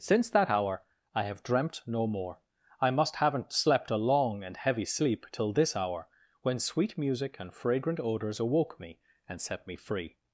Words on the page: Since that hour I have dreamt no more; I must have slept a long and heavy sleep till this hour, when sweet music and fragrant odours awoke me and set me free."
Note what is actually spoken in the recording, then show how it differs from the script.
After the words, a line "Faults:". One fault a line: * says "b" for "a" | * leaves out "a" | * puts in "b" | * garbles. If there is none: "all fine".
Since that hour I have dreamt no more; I must haven't slept a long and heavy sleep till this hour, when sweet music and fragrant odours awoke me and set me free."
Faults:
* says "haven't" for "have"